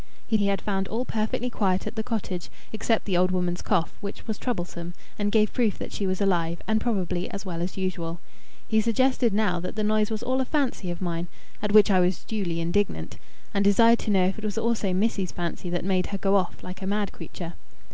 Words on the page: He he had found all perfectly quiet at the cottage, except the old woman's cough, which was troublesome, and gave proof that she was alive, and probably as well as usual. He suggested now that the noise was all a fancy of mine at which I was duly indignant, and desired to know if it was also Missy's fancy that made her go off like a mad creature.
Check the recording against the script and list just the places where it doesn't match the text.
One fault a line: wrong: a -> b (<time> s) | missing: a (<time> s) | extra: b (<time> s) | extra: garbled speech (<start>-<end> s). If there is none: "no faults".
no faults